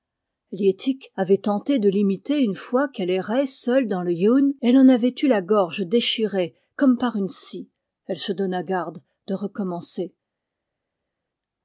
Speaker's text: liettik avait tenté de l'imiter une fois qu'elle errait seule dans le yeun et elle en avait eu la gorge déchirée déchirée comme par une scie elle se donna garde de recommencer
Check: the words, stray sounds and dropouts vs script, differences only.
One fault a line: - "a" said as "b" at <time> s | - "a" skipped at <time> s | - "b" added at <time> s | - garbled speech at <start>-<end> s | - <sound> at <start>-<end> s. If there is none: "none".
- "déchirée" skipped at 6.5 s